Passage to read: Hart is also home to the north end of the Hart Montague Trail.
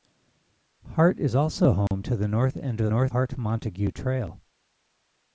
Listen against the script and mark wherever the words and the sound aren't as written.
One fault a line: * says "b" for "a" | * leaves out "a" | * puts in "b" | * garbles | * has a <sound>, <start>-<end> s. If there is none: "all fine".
* has a dropout, 1.9-1.9 s
* says "north" for "the"